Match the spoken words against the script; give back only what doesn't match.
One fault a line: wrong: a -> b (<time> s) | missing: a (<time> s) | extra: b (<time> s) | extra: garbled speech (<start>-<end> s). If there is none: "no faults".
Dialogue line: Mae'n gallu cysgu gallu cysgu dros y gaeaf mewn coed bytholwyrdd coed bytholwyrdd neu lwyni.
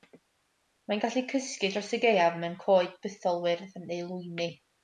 missing: gallu cysgu (1.7 s)
missing: coed bytholwyrdd (3.8 s)